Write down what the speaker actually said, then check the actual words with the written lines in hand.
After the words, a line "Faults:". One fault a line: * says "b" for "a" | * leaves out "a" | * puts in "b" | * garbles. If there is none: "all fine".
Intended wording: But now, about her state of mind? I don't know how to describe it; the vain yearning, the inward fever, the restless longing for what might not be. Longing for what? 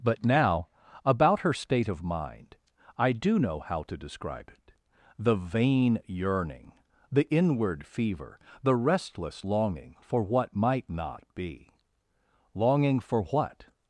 But now, about her state of mind? I do know how to describe it; the vain yearning, the inward fever, the restless longing for what might not be. Longing for what?
Faults:
* says "do" for "don't"